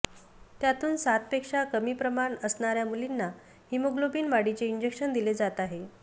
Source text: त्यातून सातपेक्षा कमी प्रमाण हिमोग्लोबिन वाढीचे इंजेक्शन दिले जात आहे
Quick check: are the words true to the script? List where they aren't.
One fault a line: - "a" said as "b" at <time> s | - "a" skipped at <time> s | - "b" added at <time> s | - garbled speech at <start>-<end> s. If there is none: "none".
- "असणाऱ्या मुलींना" added at 2.4 s